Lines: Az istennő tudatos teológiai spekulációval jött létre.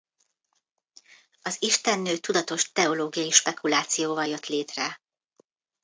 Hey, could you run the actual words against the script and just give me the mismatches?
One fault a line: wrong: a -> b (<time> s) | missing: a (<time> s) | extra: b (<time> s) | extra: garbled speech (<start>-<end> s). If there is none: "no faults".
no faults